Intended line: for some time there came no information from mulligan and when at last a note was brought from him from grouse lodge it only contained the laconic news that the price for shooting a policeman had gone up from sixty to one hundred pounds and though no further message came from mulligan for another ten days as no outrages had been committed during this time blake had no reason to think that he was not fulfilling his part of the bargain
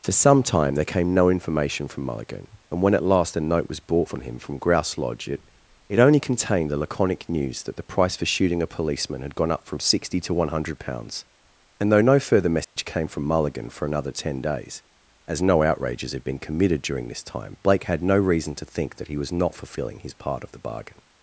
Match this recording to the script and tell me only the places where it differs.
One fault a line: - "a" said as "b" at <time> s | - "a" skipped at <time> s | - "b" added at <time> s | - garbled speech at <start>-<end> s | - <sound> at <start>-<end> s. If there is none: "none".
- "it" added at 5.9 s
- dropout at 12.6-12.8 s